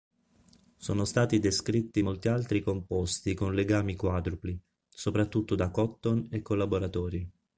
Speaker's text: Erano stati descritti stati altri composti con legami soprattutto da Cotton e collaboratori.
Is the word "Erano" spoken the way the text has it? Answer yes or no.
no